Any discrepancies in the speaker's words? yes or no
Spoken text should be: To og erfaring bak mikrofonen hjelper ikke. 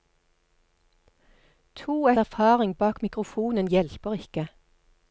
no